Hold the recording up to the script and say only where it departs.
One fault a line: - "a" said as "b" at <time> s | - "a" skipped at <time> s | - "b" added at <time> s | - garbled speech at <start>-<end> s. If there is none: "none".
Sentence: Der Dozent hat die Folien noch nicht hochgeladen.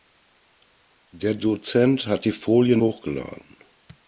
- "noch nicht" skipped at 2.8 s